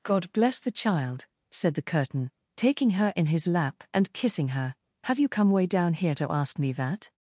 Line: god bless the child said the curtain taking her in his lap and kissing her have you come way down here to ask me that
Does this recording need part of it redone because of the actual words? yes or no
no